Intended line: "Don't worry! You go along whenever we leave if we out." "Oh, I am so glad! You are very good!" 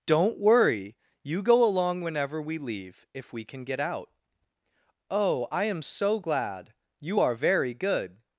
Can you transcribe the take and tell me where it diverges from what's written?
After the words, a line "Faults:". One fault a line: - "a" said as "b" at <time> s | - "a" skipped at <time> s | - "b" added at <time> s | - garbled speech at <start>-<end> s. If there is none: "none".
"Don't worry! You go along whenever we leave if we can get out." "Oh, I am so glad! You are very good!"
Faults:
- "can get" added at 3.5 s